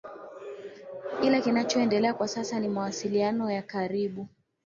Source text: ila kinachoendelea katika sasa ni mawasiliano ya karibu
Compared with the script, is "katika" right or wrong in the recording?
wrong